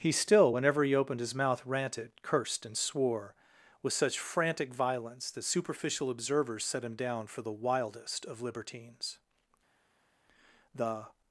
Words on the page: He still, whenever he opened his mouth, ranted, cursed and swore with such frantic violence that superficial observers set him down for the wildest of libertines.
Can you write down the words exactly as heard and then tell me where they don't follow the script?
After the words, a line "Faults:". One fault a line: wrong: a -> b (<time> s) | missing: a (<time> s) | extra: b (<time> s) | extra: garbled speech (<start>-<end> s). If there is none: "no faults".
He still, whenever he opened his mouth, ranted, cursed and swore with such frantic violence that superficial observers set him down for the wildest of libertines. The
Faults:
extra: The (10.8 s)